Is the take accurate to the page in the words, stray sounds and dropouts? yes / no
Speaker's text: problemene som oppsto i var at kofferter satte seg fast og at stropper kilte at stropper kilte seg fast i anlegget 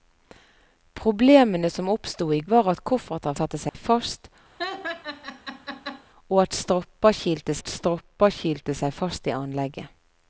no